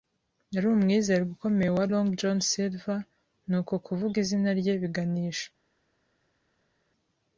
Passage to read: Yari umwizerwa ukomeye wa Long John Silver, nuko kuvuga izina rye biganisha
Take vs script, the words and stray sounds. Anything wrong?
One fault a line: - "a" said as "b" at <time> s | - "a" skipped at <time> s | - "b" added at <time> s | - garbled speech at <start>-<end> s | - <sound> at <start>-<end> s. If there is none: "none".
none